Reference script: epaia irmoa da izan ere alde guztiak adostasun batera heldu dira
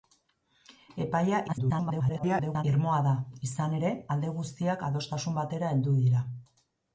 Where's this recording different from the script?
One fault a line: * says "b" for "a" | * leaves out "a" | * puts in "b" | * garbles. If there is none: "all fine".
* garbles